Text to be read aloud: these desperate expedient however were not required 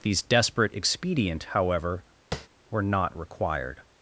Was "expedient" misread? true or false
false